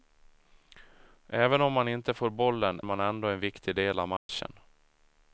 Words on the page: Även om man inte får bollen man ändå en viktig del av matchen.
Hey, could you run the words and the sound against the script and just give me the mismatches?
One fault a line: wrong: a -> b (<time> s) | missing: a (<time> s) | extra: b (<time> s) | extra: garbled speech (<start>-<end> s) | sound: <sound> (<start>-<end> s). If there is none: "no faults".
sound: dropout (4.2-4.3 s)